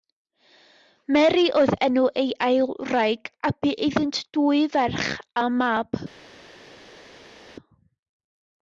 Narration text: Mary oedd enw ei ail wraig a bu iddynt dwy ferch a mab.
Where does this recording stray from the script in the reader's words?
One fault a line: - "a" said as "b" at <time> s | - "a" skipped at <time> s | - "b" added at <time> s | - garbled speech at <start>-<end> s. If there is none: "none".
none